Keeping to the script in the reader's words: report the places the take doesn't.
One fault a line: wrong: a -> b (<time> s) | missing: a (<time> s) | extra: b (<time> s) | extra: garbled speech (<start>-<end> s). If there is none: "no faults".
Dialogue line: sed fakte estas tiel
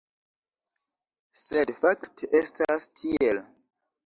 no faults